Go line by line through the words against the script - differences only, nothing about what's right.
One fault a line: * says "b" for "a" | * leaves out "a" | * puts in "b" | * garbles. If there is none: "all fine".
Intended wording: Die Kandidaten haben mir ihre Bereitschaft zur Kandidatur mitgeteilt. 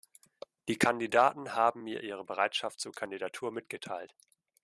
all fine